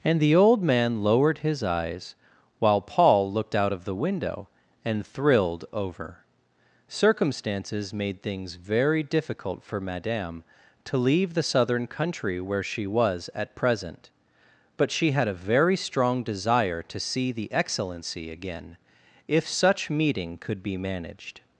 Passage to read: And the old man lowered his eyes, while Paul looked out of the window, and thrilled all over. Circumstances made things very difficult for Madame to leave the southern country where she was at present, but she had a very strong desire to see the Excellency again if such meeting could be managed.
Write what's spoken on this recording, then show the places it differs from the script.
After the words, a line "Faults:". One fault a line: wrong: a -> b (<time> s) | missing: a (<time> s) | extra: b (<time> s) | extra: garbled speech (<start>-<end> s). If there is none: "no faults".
And the old man lowered his eyes, while Paul looked out of the window, and thrilled over. Circumstances made things very difficult for Madame to leave the southern country where she was at present, but she had a very strong desire to see the Excellency again if such meeting could be managed.
Faults:
missing: all (5.7 s)